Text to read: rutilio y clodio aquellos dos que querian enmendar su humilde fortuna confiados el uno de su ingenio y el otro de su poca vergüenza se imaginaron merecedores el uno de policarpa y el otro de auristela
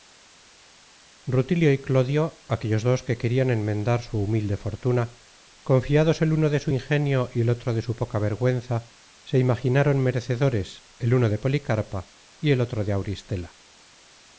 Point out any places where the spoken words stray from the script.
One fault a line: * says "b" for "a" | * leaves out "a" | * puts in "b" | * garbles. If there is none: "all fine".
all fine